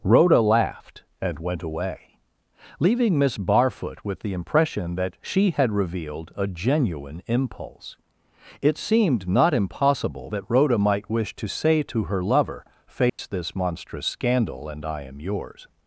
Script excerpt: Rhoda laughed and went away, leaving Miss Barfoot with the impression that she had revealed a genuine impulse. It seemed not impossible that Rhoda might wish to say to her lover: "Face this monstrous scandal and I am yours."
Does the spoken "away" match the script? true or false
true